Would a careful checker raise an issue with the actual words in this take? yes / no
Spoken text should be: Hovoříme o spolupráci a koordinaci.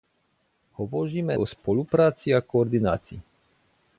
no